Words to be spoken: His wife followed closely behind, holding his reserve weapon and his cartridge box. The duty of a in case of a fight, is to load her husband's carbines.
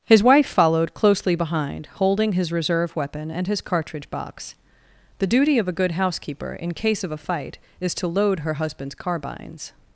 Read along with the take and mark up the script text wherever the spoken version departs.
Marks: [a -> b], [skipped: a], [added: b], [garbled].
His wife followed closely behind, holding his reserve weapon and his cartridge box. The duty of a [added: good housekeeper] in case of a fight, is to load her husband's carbines.